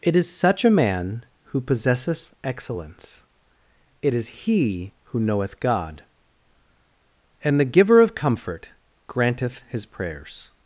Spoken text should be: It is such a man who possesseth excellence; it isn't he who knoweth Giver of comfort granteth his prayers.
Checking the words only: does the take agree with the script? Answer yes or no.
no